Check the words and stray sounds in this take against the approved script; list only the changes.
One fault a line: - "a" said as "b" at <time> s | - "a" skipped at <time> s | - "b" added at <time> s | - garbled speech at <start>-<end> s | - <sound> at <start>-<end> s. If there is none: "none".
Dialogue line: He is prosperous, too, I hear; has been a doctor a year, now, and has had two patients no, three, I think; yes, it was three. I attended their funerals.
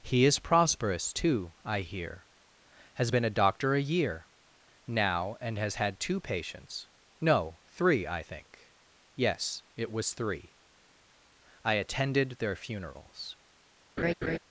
- laugh at 14.0-14.4 s